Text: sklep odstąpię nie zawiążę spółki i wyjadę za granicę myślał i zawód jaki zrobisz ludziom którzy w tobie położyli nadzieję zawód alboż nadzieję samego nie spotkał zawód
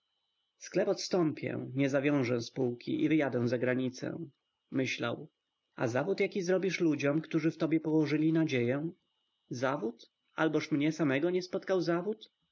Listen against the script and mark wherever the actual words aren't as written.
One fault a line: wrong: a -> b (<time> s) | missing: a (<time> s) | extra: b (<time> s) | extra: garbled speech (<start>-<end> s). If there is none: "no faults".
wrong: i -> a (5.8 s)
wrong: nadzieję -> mnie (10.7 s)